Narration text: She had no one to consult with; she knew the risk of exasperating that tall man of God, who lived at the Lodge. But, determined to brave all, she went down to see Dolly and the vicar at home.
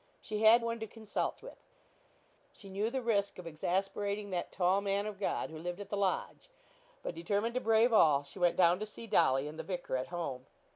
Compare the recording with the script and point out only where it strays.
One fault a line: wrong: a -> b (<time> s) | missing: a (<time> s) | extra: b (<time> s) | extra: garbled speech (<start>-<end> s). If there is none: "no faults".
missing: no (0.7 s)